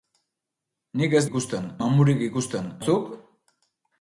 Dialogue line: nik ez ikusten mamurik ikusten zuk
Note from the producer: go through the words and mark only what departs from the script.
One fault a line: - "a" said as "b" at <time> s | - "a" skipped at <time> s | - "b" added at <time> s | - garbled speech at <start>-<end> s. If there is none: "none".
none